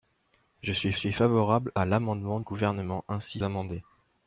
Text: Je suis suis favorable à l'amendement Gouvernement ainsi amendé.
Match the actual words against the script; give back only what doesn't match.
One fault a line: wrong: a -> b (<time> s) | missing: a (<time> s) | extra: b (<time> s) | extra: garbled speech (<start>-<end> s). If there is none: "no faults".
no faults